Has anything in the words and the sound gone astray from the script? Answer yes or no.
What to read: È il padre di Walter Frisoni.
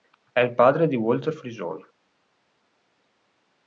no